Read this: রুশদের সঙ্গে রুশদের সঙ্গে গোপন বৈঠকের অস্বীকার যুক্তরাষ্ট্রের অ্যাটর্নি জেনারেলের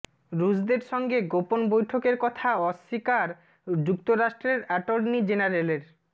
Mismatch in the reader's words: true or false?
true